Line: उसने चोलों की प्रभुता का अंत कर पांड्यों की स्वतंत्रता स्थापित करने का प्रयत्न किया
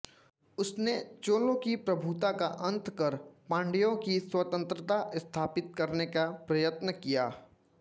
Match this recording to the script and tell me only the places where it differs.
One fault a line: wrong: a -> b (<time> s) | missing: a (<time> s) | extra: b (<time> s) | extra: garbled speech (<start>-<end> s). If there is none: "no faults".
no faults